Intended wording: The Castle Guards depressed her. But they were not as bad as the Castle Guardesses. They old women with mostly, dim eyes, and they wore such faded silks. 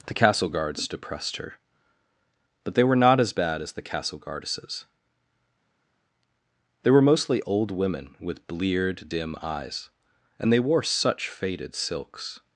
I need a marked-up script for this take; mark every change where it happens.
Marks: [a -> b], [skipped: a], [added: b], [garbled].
The Castle Guards depressed her. But they were not as bad as the Castle Guardesses. They [added: were mostly] old women with [mostly, -> bleared] dim eyes, and they wore such faded silks.